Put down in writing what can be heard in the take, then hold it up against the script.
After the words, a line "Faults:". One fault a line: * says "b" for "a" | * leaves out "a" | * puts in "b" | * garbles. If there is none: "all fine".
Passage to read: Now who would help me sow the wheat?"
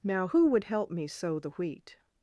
Now who would help me sow the wheat?"
Faults:
all fine